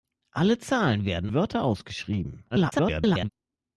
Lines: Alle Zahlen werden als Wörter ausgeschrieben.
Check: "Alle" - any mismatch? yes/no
no